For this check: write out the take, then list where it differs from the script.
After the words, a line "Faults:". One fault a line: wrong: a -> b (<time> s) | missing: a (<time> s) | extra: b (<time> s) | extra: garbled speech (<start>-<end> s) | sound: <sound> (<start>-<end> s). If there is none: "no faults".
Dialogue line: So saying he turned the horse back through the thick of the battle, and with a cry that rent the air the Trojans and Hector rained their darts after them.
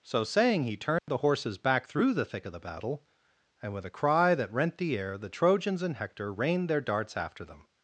So saying he turned the horses back through the thick of the battle, and with a cry that rent the air the Trojans and Hector rained their darts after them.
Faults:
sound: dropout (1.0-1.1 s)
wrong: horse -> horses (1.2 s)